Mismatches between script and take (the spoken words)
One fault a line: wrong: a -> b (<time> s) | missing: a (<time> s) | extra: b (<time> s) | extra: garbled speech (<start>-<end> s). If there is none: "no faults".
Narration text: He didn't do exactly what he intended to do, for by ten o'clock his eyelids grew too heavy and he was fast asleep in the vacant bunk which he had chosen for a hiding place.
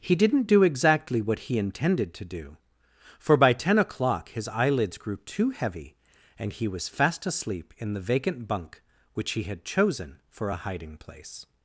no faults